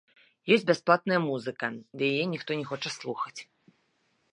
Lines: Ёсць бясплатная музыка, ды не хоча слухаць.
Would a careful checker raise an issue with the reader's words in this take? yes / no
yes